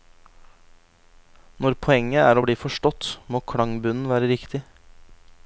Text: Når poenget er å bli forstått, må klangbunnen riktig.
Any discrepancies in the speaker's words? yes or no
yes